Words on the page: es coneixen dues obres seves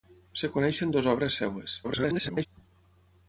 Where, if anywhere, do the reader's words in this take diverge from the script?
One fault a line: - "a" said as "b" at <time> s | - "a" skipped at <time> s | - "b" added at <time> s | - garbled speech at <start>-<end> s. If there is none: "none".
- garbled speech at 1.8-2.5 s